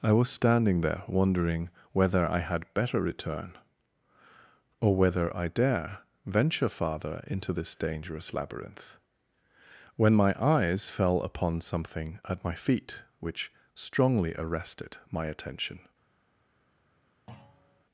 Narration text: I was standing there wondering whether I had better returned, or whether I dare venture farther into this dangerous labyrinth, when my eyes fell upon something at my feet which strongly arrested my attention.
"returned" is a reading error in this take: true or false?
true